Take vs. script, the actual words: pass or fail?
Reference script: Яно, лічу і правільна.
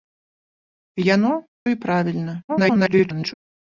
fail